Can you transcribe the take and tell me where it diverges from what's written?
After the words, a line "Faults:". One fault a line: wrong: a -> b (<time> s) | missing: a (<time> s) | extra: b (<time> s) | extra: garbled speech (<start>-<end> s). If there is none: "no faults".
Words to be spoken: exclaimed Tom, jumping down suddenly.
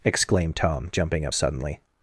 exclaimed Tom, jumping up suddenly.
Faults:
wrong: down -> up (1.2 s)